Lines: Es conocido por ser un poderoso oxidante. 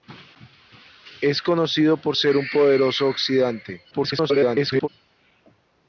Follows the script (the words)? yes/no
no